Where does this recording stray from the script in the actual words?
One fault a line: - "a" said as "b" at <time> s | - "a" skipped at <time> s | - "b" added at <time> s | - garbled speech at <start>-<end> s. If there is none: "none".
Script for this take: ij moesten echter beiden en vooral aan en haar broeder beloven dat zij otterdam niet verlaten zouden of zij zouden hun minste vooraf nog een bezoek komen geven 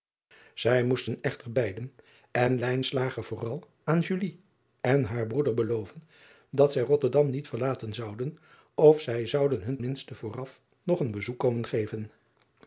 none